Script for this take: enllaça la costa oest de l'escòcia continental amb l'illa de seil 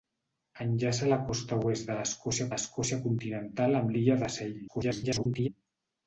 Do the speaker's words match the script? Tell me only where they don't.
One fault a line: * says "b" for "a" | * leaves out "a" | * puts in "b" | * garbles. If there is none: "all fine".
* puts in "l'escòcia"
* garbles